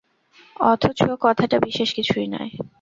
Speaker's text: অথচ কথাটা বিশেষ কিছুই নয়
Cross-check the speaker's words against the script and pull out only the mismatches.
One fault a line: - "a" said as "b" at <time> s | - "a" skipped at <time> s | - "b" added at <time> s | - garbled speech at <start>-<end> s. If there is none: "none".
none